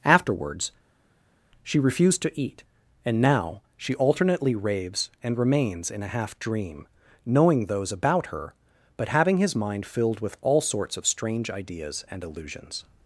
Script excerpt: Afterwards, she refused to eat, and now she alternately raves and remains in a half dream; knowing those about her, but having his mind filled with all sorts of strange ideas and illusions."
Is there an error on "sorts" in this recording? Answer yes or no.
no